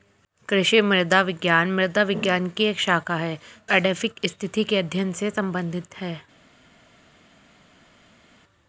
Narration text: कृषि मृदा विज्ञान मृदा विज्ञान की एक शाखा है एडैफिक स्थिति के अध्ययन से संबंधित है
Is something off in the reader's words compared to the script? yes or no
no